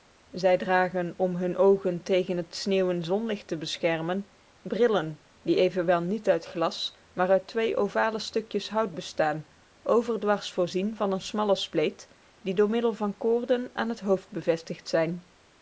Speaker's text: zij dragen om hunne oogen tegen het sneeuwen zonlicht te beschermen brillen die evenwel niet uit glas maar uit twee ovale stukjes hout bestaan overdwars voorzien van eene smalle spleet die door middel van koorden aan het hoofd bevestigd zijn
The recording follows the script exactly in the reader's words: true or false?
true